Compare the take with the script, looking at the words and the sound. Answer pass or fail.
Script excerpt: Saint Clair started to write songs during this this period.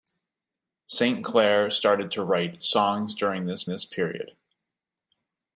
pass